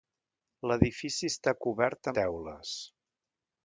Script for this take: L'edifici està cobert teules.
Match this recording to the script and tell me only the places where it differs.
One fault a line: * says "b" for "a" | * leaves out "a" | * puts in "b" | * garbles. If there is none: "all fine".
all fine